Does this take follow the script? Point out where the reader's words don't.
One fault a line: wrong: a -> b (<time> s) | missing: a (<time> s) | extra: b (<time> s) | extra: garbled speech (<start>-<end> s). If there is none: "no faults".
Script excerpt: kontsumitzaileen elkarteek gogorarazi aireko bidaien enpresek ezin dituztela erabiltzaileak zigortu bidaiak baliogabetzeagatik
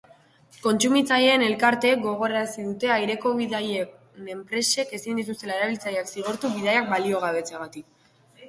extra: dute (2.7 s)